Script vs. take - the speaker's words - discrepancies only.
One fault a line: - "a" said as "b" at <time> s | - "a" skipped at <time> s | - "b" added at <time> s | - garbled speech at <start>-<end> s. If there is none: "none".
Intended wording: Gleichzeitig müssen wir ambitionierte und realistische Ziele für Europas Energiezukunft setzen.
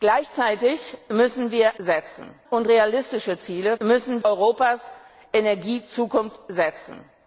- "ambitionierte" said as "setzen" at 1.8 s
- "für" said as "müssen" at 3.8 s